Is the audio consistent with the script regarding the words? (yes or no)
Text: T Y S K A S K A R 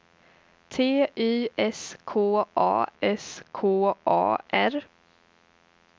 yes